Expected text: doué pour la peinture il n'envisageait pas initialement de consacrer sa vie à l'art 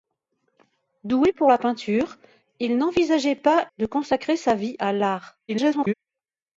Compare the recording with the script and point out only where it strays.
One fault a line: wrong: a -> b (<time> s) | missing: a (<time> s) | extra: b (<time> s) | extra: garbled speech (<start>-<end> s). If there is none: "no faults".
missing: initialement (3.7 s)
extra: garbled speech (5.5-5.9 s)